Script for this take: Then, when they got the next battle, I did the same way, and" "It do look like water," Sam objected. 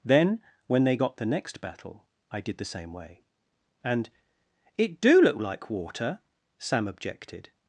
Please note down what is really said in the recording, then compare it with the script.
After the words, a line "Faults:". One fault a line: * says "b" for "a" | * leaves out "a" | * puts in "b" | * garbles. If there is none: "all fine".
Then, when they got the next battle, I did the same way, and" "It do look like water," Sam objected.
Faults:
all fine